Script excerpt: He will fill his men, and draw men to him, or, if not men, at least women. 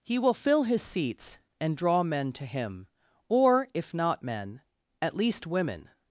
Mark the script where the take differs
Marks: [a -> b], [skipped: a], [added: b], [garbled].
He will fill his [men, -> seats] and draw men to him, or, if not men, at least women.